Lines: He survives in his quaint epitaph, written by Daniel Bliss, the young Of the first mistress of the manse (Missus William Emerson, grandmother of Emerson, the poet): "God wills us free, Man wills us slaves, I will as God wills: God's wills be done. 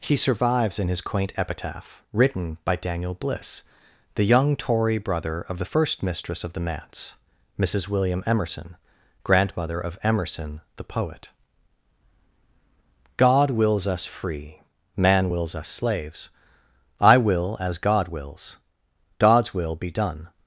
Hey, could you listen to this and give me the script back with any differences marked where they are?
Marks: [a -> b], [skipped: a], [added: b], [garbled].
He survives in his quaint epitaph, written by Daniel Bliss, the young [added: Tory brother] Of the first mistress of the manse (Missus William Emerson, grandmother of Emerson, the poet): "God wills us free, Man wills us slaves, I will as God wills: God's [wills -> will] be done.